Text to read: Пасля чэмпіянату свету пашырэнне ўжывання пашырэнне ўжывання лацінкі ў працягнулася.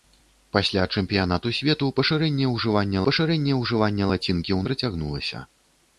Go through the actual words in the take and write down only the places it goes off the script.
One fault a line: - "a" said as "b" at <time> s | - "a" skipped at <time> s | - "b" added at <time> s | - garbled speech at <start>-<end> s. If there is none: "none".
none